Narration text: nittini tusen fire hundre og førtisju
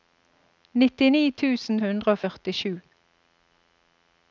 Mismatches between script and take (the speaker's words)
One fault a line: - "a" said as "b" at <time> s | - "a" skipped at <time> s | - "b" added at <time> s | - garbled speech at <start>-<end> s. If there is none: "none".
- "fire" skipped at 1.8 s